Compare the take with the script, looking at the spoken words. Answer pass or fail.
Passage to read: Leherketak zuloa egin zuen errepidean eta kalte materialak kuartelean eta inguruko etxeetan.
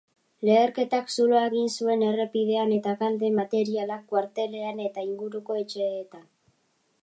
pass